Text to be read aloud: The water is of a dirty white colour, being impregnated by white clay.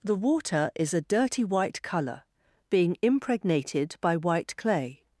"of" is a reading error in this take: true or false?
true